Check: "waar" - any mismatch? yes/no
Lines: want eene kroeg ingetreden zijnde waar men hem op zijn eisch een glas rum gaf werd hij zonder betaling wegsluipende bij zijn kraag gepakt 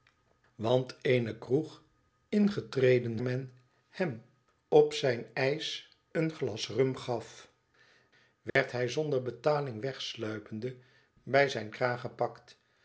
yes